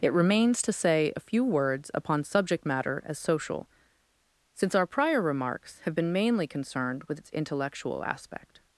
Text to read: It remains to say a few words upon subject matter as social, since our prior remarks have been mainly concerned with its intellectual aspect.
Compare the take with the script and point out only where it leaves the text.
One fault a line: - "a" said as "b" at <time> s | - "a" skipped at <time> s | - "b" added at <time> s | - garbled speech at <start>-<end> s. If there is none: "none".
none